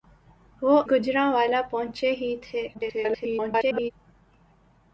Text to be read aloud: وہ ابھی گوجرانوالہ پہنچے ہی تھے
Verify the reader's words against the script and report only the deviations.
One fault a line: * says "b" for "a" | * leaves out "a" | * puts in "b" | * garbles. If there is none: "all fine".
* leaves out "ابھی"
* garbles